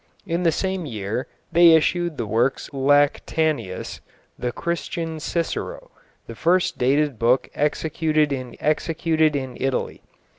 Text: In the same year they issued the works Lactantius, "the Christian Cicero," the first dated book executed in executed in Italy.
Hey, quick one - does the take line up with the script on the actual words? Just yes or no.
yes